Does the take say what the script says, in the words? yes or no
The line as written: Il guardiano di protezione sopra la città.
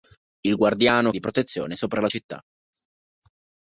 yes